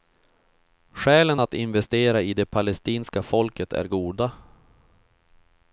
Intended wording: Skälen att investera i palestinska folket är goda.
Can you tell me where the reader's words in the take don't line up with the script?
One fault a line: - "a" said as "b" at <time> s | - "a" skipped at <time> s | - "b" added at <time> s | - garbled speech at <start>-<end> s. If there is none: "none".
- "det" added at 2.3 s